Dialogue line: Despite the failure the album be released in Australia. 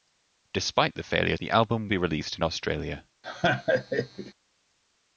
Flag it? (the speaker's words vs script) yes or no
no